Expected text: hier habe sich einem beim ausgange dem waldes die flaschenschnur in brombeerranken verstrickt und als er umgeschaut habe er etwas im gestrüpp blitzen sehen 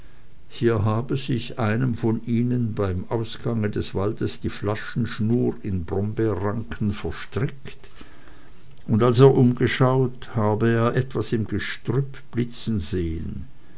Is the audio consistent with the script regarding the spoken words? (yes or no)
no